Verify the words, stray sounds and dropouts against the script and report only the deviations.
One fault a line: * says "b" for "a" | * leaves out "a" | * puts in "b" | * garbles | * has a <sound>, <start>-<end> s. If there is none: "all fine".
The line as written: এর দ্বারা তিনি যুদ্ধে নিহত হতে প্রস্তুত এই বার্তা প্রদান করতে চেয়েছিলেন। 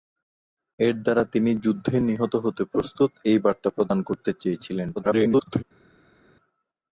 * garbles